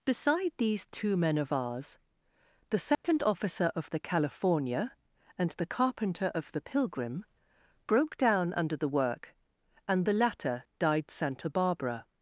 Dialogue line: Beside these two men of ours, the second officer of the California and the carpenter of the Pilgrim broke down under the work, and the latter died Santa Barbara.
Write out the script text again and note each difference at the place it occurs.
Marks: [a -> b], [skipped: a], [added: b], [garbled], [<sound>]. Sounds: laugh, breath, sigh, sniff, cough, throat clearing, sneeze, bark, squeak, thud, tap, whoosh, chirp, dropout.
Beside these two men of ours, the second [dropout] officer of the California and the carpenter of the Pilgrim broke down under the work, and the latter died Santa Barbara.